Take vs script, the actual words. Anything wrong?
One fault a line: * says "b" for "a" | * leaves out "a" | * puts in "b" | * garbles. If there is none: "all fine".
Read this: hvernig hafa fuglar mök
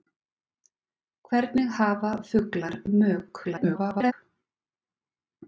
* garbles